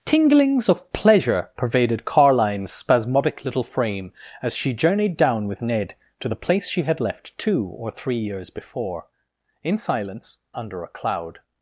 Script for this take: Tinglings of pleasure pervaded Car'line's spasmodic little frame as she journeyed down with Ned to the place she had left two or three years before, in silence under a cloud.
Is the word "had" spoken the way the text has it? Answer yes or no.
yes